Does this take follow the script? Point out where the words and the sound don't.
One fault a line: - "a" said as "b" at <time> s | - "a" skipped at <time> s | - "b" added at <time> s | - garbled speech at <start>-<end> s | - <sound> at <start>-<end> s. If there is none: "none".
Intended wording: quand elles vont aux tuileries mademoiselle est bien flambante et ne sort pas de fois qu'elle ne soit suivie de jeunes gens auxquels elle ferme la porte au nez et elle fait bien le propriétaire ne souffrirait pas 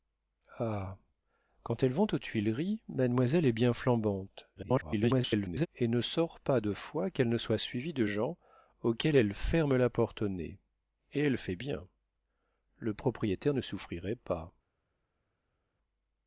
- garbled speech at 4.6-5.7 s
- "jeunes" skipped at 8.1 s